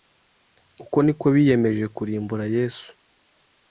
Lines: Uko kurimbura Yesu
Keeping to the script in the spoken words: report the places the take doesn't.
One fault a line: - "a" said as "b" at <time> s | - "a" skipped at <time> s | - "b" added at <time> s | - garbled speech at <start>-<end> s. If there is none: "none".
- "niko biyemeje" added at 1.1 s